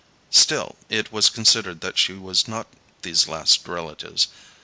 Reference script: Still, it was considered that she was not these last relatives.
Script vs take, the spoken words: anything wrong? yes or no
no